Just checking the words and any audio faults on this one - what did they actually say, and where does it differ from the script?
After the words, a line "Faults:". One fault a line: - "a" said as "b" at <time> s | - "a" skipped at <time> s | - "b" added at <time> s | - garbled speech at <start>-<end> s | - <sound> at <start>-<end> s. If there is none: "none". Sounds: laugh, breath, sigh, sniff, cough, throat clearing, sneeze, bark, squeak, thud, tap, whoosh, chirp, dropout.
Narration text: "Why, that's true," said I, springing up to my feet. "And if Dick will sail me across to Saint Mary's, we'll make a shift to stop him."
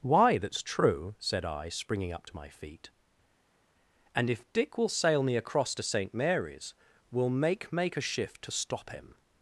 "Why, that's true," said I, springing up to my feet. "And if Dick will sail me across to Saint Mary's, we'll make make a shift to stop him."
Faults:
- "make" added at 7.7 s